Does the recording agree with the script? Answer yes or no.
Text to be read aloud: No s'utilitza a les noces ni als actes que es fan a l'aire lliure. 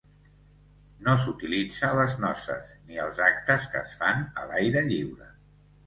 yes